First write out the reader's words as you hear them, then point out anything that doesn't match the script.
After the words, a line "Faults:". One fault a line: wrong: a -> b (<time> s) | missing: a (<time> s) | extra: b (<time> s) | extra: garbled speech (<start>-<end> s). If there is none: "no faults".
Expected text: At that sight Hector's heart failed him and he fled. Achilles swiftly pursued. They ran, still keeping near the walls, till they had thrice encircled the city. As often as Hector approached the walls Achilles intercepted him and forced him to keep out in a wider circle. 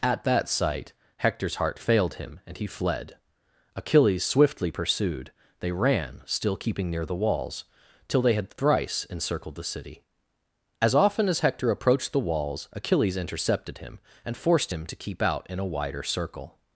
At that sight Hector's heart failed him and he fled. Achilles swiftly pursued. They ran, still keeping near the walls, till they had thrice encircled the city. As often as Hector approached the walls Achilles intercepted him and forced him to keep out in a wider circle.
Faults:
no faults